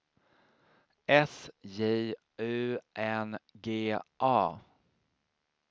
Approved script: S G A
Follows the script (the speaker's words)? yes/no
no